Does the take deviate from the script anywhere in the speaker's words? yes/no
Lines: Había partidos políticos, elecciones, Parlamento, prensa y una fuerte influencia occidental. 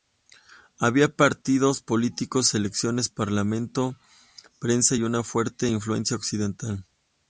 no